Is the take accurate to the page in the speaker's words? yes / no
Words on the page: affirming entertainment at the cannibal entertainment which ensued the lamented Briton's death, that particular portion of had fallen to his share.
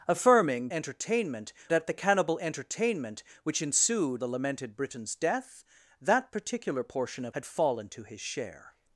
yes